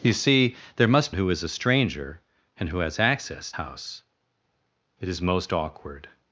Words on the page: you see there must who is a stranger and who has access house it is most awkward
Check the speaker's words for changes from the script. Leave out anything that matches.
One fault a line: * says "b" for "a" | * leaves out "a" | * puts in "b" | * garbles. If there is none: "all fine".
all fine